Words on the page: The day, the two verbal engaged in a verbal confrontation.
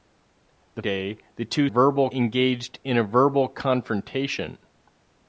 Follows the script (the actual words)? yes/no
yes